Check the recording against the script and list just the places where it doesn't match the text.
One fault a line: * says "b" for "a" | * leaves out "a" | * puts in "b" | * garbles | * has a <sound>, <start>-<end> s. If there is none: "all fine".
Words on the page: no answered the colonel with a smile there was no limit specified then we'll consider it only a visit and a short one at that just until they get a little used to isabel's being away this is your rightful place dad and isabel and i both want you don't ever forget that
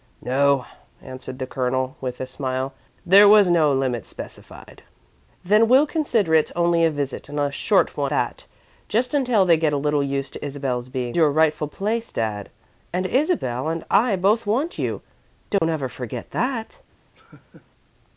* leaves out "at"
* leaves out "away this is"
* has a dropout, 15.6-15.6 s
* has a laugh, 17.1-17.7 s